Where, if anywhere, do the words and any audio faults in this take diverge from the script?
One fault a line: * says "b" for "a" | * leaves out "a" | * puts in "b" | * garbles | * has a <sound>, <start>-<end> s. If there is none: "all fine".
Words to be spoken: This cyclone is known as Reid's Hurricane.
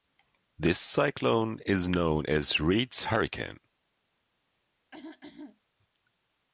* has a throat clearing, 4.9-5.6 s